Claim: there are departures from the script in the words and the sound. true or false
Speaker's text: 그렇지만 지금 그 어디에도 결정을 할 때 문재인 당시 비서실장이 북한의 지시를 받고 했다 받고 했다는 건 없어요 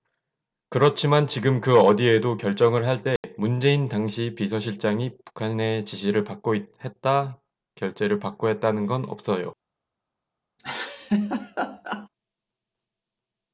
true